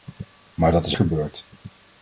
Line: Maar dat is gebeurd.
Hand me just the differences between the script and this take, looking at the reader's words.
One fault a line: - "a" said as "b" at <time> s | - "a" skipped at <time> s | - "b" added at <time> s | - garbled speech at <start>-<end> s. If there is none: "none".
none